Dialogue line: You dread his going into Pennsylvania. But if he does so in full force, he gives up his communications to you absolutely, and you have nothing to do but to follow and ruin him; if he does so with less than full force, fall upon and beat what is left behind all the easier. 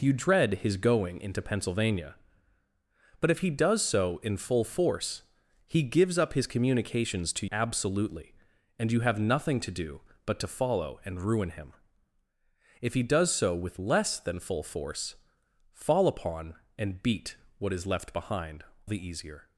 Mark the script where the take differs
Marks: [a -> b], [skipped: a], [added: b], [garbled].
You dread his going into Pennsylvania. But if he does so in full force, he gives up his communications to [skipped: you] absolutely, and you have nothing to do but to follow and ruin him; if he does so with less than full force, fall upon and beat what is left behind [skipped: all] the easier.